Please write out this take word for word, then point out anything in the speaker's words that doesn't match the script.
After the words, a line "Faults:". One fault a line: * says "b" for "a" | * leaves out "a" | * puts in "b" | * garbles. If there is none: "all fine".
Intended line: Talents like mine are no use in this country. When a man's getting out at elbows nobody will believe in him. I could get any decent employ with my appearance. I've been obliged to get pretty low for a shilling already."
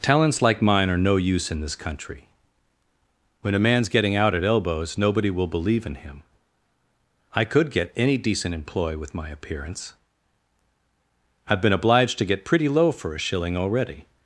Talents like mine are no use in this country. When a man's getting out at elbows nobody will believe in him. I could get any decent employ with my appearance. I've been obliged to get pretty low for a shilling already."
Faults:
all fine